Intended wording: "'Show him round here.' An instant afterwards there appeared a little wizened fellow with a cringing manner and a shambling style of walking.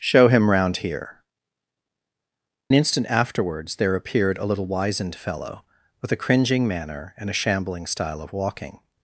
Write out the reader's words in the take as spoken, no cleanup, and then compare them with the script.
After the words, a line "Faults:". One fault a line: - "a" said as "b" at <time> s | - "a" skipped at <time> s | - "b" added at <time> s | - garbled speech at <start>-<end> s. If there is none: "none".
"'Show him round here.' Instant afterwards there appeared a little wizened fellow with a cringing manner and a shambling style of walking.
Faults:
- "An" skipped at 1.2 s